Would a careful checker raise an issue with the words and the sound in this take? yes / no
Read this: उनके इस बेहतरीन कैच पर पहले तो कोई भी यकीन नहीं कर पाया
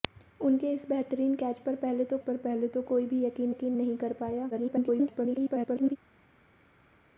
yes